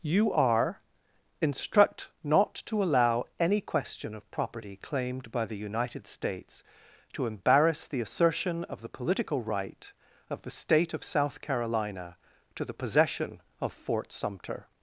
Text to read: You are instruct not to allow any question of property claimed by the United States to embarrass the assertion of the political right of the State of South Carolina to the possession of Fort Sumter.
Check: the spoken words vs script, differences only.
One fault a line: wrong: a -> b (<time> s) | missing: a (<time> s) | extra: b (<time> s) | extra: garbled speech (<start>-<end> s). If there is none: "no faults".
no faults